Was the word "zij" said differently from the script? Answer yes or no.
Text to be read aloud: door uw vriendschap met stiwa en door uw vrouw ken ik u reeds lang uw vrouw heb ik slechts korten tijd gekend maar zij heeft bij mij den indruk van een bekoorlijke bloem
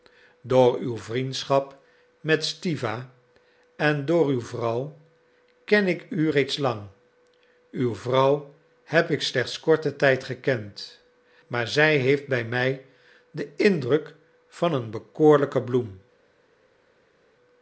no